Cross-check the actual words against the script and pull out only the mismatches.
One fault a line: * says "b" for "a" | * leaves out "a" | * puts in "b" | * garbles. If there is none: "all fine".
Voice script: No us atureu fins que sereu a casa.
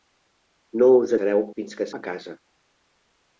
* says "sereu" for "atureu"
* leaves out "sereu"